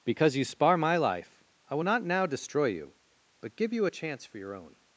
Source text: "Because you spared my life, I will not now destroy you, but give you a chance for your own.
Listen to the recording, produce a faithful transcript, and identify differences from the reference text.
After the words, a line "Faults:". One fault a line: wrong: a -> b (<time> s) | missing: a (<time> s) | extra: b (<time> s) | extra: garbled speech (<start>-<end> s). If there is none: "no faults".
"Because you spar my life, I will not now destroy you, but give you a chance for your own.
Faults:
wrong: spared -> spar (0.4 s)